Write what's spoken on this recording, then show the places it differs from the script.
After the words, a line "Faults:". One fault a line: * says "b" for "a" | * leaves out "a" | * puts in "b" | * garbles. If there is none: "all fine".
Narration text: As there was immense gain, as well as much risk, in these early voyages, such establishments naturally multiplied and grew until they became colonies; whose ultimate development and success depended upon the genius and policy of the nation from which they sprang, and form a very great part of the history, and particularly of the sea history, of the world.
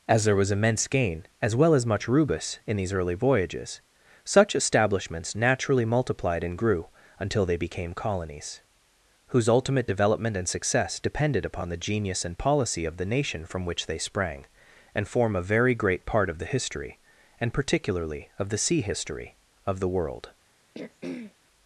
As there was immense gain, as well as much rubus, in these early voyages, such establishments naturally multiplied and grew until they became colonies; whose ultimate development and success depended upon the genius and policy of the nation from which they sprang, and form a very great part of the history, and particularly of the sea history, of the world.
Faults:
* says "rubus" for "risk"